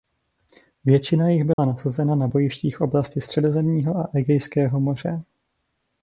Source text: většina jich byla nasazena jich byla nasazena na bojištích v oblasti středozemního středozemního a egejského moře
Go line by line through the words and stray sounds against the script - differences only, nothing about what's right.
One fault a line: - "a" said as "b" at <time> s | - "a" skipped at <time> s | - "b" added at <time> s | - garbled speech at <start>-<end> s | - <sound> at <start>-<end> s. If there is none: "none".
- dropout at 1.5-1.6 s
- "jich byla nasazena" skipped at 2.1 s
- "středozemního" skipped at 4.0 s